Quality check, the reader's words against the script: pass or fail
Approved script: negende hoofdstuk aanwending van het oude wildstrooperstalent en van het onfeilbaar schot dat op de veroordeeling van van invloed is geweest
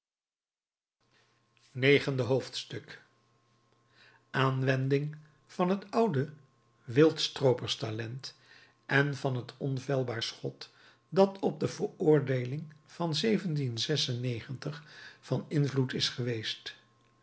pass